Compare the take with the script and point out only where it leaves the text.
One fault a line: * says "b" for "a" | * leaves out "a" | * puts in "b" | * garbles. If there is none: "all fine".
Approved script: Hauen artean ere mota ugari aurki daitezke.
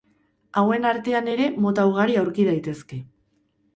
all fine